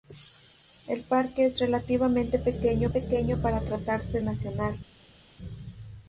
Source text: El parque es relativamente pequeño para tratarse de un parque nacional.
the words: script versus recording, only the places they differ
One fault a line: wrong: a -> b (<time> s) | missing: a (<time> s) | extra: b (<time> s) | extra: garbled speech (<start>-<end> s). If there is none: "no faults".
extra: pequeño (2.9 s)
missing: de un parque (4.2 s)